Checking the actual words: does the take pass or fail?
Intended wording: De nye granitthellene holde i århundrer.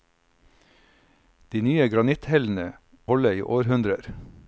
pass